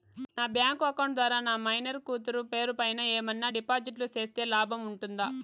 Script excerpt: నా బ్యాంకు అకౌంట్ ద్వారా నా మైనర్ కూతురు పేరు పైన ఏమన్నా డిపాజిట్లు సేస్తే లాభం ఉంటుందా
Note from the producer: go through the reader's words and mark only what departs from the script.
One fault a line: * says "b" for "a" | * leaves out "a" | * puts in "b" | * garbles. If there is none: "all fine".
all fine